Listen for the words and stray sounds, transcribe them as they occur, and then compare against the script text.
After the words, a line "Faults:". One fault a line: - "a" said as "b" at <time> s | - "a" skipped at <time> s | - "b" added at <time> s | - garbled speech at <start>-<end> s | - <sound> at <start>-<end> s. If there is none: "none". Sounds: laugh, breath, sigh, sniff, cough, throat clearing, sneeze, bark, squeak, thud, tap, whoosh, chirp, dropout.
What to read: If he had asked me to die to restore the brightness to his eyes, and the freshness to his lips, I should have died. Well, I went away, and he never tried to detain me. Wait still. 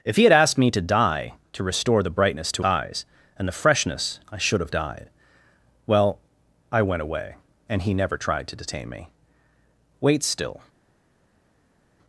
If he had asked me to die to restore the brightness to eyes, and the freshness I should have died. Well, I went away, and he never tried to detain me. Wait still.
Faults:
- "his" skipped at 2.6 s
- "to his lips" skipped at 4.2 s